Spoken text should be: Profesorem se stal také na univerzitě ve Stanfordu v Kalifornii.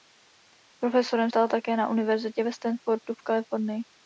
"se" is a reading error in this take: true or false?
true